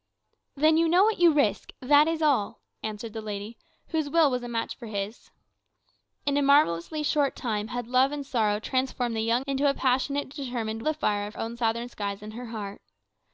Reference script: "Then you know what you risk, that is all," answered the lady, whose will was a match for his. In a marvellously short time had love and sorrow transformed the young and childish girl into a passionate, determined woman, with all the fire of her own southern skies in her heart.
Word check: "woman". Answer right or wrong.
wrong